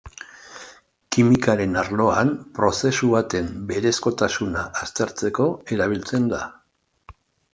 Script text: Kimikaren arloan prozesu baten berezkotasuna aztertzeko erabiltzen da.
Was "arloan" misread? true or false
false